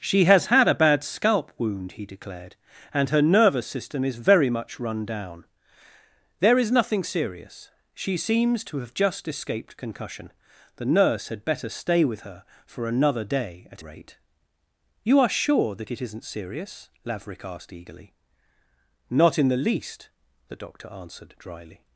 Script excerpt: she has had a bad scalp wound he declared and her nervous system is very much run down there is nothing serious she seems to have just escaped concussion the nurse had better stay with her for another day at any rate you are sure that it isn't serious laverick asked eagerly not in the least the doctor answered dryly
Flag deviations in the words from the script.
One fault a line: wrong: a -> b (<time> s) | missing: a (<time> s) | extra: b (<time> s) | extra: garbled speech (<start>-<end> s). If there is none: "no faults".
missing: any (13.8 s)